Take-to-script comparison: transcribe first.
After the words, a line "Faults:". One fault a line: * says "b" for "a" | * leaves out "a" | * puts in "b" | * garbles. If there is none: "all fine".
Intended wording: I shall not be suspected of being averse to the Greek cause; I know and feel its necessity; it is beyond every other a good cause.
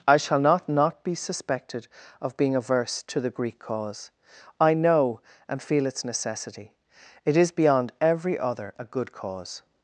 I shall not not be suspected of being averse to the Greek cause; I know and feel its necessity; it is beyond every other a good cause.
Faults:
* puts in "not"